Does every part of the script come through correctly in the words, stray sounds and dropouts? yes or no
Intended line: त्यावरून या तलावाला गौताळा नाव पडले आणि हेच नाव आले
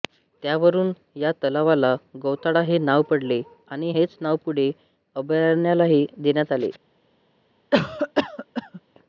no